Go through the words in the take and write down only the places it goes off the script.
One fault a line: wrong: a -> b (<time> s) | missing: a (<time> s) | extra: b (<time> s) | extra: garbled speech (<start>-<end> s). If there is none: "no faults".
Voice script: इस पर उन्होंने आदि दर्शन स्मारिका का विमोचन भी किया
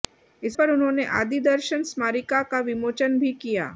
no faults